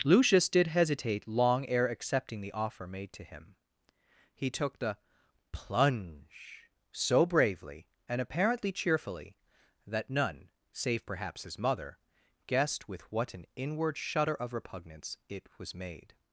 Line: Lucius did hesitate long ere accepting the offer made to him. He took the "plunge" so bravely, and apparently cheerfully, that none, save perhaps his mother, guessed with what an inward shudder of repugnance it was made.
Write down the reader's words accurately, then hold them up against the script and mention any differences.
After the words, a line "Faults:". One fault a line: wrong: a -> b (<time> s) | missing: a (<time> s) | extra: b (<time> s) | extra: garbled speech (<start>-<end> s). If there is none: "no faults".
Lucius did hesitate long ere accepting the offer made to him. He took the "plunge" so bravely, and apparently cheerfully, that none, save perhaps his mother, guessed with what an inward shudder of repugnance it was made.
Faults:
no faults